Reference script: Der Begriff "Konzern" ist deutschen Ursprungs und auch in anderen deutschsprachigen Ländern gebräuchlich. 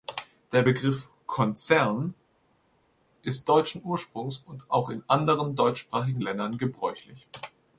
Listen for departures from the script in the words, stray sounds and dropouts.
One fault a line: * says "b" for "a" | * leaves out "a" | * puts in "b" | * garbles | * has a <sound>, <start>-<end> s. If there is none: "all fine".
all fine